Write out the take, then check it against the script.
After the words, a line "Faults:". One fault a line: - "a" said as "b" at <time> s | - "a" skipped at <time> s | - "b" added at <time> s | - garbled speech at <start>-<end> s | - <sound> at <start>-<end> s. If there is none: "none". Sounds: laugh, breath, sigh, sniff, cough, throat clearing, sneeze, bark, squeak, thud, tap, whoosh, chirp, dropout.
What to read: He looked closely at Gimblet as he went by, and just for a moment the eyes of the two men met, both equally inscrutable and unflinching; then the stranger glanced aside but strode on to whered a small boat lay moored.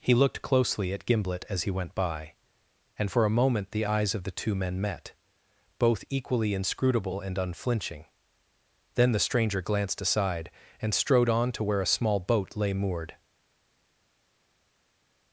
He looked closely at Gimblet as he went by, and for a moment the eyes of the two men met, both equally inscrutable and unflinching; then the stranger glanced aside and strode on to where a small boat lay moored.
Faults:
- "just" skipped at 3.1 s
- "but" said as "and" at 10.8 s
- "whered" said as "where" at 11.6 s